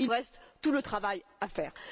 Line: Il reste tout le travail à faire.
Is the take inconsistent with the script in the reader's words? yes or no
no